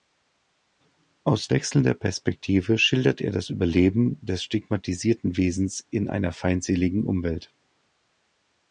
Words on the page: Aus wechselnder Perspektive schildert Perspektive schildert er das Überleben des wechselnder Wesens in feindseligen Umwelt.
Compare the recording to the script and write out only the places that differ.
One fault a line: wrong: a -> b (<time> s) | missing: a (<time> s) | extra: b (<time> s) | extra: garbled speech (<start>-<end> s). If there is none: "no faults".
missing: Perspektive schildert (3.2 s)
wrong: wechselnder -> stigmatisierten (4.4 s)
extra: einer (6.1 s)